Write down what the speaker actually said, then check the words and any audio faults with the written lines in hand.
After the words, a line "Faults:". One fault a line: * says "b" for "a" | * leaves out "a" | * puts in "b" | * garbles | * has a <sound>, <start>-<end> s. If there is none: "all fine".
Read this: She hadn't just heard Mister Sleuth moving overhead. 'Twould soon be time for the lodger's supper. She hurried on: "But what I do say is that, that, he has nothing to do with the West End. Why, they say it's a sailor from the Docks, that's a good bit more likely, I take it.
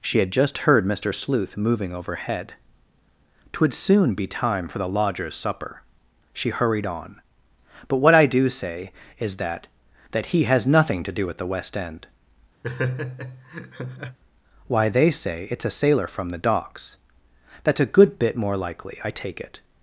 She had just heard Mister Sleuth moving overhead. 'Twould soon be time for the lodger's supper. She hurried on: "But what I do say is that, that, he has nothing to do with the West End. Why, they say it's a sailor from the Docks, that's a good bit more likely, I take it.
Faults:
* says "had" for "hadn't"
* has a laugh, 12.6-14.2 s